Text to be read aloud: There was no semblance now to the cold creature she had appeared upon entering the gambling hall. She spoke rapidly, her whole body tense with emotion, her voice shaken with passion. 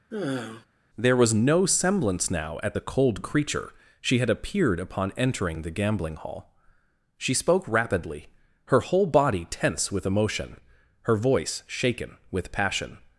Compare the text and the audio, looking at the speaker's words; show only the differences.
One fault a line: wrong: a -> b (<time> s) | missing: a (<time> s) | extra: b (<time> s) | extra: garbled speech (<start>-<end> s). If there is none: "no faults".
wrong: to -> at (2.6 s)